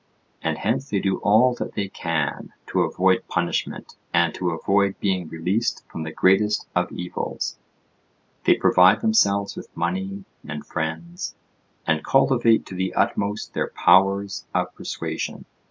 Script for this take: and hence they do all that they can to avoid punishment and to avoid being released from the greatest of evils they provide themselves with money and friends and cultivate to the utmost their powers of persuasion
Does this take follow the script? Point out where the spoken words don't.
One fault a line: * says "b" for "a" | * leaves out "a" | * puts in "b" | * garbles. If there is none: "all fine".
all fine